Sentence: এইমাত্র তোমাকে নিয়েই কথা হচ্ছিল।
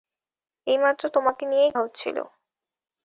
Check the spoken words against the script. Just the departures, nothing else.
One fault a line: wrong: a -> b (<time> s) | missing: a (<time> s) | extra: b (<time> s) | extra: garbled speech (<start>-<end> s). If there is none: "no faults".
missing: কথা (1.7 s)